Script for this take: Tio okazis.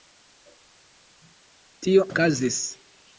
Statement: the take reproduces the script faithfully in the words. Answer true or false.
true